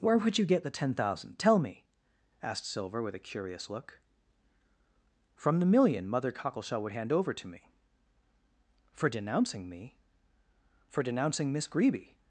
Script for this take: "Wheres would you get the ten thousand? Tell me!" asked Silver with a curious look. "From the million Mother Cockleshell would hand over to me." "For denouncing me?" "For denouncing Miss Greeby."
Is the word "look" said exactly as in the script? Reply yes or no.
yes